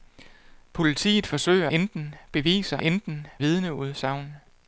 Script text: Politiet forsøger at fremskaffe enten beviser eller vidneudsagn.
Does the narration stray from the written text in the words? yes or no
yes